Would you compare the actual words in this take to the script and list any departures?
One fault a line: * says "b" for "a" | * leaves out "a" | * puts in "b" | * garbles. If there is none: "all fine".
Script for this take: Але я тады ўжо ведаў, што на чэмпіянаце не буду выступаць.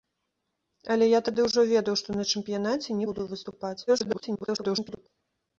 * leaves out "не"
* garbles